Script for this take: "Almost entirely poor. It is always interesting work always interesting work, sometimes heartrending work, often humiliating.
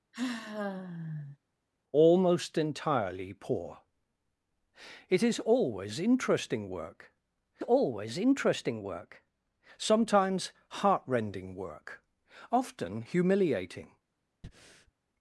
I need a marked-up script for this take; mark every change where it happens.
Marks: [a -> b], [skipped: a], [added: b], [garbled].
"Almost entirely poor. It is always interesting work always interesting work, sometimes heartrending work, often humiliating.